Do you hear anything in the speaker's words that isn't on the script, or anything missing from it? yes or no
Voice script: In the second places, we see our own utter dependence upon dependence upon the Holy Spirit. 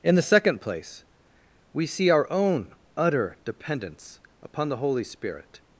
yes